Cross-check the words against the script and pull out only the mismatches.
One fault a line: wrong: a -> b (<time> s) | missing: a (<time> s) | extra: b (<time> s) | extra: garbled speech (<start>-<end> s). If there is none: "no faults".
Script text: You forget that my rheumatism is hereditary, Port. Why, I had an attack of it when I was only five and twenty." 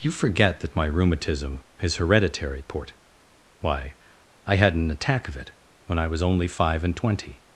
no faults